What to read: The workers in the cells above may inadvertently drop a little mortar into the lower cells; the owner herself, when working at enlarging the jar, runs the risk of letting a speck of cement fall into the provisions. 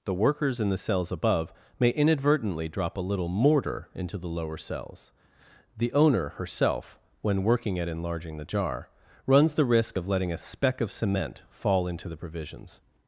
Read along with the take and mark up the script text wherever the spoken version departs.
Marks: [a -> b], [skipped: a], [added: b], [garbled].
The workers in the cells above may inadvertently drop a little mortar into the lower cells; the owner herself, when working at enlarging the jar, runs the risk of letting a speck of cement fall into the provisions.